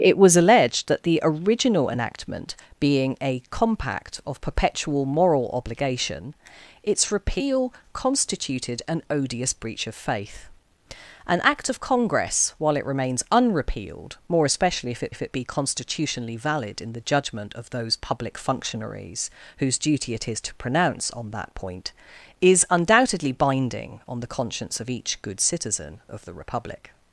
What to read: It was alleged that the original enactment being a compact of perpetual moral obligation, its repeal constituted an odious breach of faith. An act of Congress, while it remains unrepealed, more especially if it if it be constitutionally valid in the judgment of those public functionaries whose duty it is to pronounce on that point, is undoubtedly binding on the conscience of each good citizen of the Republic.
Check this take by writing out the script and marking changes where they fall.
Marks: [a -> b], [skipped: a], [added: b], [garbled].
It was alleged that the original enactment being a compact of perpetual moral obligation, its repeal constituted an odious breach of faith. An act of Congress, while it remains unrepealed, more especially if it if it be constitutionally valid in the judgment of those public functionaries whose duty it is to pronounce on that point, is undoubtedly binding on the conscience of each good citizen of the Republic.